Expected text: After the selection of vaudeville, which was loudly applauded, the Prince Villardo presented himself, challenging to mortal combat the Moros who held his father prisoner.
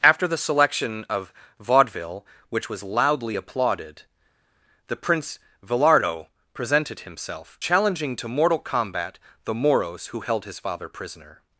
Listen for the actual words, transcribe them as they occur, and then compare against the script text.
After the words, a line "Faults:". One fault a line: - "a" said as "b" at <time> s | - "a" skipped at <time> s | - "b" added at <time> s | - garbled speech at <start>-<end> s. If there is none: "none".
After the selection of vaudeville, which was loudly applauded, the Prince Villardo presented himself, challenging to mortal combat the Moros who held his father prisoner.
Faults:
none